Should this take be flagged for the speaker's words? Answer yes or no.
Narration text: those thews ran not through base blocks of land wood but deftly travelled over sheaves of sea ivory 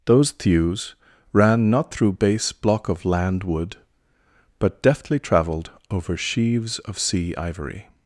yes